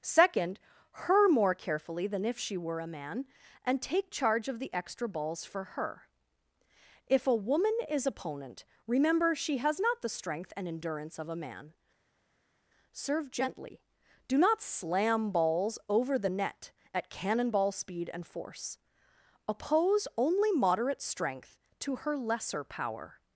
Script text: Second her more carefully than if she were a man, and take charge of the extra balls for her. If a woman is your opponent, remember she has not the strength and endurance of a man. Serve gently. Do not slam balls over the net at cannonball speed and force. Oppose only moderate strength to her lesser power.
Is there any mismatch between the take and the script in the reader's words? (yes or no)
yes